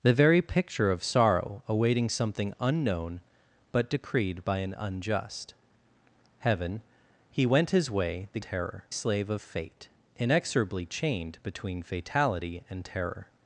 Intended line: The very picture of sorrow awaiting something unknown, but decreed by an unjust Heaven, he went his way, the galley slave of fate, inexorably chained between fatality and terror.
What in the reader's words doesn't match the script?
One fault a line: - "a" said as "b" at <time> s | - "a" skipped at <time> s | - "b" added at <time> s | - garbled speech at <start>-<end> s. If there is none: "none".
- "galley" said as "terror" at 8.4 s